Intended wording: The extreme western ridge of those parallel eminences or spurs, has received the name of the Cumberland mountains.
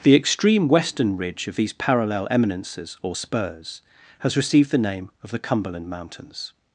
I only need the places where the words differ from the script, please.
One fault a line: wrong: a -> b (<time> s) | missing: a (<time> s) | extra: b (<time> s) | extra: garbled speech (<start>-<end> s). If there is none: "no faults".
wrong: those -> these (1.6 s)